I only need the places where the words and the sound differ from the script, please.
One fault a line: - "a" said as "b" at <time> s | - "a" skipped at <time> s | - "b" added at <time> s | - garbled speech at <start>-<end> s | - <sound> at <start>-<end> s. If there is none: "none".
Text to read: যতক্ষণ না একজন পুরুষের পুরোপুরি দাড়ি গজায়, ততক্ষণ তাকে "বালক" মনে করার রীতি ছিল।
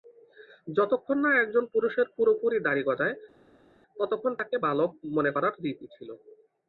none